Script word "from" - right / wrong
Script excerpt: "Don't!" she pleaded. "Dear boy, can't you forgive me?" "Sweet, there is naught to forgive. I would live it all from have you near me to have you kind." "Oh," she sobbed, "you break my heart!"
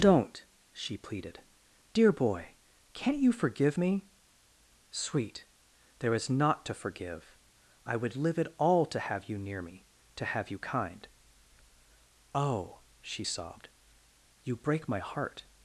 wrong